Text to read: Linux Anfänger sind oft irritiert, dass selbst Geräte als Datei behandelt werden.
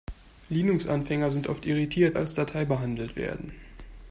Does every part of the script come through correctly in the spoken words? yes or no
no